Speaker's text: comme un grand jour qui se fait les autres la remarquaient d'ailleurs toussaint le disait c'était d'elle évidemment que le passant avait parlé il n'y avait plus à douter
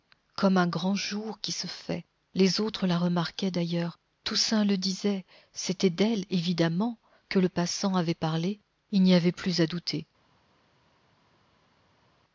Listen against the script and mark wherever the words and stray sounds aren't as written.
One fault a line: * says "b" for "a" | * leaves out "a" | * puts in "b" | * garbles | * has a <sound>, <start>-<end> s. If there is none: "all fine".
all fine